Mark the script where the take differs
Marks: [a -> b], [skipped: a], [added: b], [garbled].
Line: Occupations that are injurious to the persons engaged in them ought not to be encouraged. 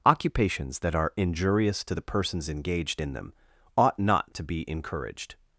Occupations that are injurious to the persons engaged in them ought not to be encouraged.